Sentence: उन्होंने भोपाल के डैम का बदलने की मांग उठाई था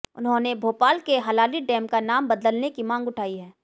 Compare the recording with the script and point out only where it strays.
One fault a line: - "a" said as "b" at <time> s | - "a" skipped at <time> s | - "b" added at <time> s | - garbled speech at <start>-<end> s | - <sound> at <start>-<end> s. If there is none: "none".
- "हलाली" added at 1.2 s
- "नाम" added at 2.0 s
- "था" said as "है" at 3.4 s